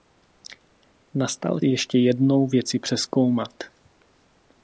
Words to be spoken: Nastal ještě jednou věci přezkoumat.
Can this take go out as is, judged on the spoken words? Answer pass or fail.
pass